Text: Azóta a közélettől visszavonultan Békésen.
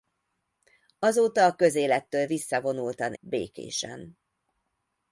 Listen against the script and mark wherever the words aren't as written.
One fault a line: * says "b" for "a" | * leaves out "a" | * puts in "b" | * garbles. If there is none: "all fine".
all fine